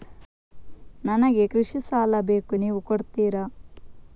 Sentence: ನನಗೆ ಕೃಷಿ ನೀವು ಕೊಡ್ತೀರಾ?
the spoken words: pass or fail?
fail